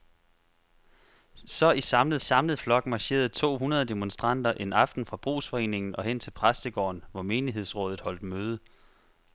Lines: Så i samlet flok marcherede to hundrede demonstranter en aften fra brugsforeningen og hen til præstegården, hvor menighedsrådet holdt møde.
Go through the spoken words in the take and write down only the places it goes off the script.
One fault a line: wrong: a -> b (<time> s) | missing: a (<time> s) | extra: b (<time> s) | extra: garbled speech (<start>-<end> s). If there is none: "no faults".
extra: samlet (2.2 s)